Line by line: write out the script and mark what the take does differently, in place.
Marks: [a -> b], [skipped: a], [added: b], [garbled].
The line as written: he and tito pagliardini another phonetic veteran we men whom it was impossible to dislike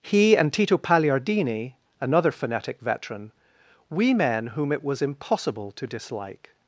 he and tito pagliardini another phonetic veteran we men whom it was impossible to dislike